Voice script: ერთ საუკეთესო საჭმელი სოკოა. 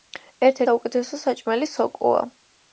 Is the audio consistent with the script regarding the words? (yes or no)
yes